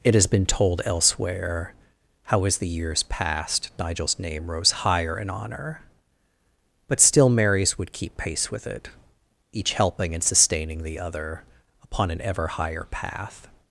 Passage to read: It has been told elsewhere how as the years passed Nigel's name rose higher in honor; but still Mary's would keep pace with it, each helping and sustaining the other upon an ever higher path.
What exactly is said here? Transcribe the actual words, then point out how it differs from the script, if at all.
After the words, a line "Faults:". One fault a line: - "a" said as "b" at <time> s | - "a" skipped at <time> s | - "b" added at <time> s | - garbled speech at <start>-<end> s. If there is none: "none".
It has been told elsewhere how as the years passed Nigel's name rose higher in honor; but still Mary's would keep pace with it, each helping and sustaining the other upon an ever higher path.
Faults:
none